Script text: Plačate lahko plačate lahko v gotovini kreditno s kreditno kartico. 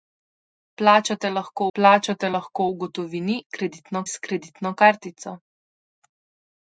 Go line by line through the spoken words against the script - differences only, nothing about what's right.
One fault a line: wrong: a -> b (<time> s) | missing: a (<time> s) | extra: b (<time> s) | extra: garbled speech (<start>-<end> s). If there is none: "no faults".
no faults